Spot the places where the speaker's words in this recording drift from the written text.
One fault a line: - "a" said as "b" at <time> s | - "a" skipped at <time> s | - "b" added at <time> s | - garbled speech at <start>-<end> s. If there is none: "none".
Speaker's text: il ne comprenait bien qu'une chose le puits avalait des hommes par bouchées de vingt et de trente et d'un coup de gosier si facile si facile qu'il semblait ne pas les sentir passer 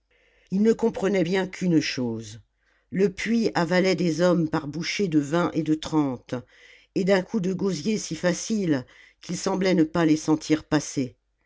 - "si facile" skipped at 8.8 s